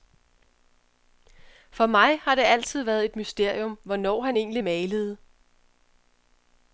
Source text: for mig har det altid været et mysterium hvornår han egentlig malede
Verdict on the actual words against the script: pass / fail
pass